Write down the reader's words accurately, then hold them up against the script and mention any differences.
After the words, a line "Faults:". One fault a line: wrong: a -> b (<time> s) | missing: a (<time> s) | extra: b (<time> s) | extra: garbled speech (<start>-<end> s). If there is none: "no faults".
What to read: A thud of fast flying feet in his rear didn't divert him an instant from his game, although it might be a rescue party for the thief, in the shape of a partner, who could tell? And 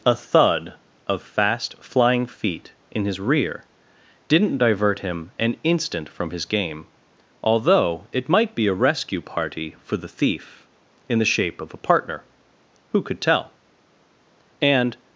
A thud of fast flying feet in his rear didn't divert him an instant from his game, although it might be a rescue party for the thief, in the shape of a partner, who could tell? And
Faults:
no faults